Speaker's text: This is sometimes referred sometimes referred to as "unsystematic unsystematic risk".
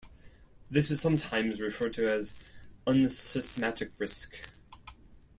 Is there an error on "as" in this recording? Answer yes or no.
no